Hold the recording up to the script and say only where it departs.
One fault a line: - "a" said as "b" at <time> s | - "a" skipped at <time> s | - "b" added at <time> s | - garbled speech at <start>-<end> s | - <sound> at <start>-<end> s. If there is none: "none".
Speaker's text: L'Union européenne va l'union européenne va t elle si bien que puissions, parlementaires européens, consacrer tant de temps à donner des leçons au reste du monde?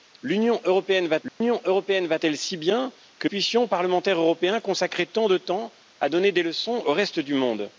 - dropout at 1.3-1.4 s